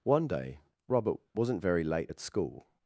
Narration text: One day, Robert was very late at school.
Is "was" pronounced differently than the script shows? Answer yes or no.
yes